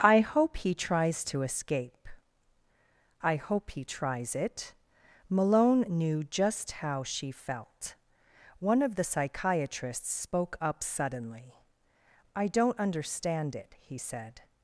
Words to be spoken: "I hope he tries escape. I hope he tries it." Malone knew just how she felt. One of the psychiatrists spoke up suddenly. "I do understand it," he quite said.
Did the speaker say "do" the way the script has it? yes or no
no